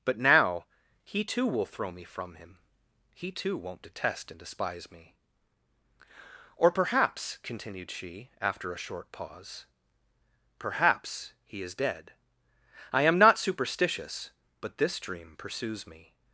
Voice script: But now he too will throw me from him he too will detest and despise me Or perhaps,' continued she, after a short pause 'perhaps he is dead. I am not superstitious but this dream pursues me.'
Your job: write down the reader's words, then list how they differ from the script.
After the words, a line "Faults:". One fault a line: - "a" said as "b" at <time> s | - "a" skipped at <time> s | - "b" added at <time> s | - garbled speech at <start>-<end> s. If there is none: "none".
But now he too will throw me from him he too won't detest and despise me Or perhaps,' continued she, after a short pause 'perhaps he is dead. I am not superstitious but this dream pursues me.'
Faults:
- "will" said as "won't" at 3.5 s